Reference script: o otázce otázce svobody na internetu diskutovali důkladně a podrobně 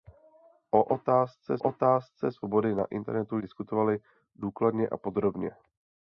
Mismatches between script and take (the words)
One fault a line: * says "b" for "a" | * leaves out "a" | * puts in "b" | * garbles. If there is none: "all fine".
all fine